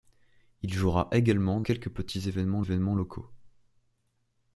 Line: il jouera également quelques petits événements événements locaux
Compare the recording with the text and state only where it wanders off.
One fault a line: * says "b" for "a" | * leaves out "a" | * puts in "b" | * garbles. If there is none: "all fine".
all fine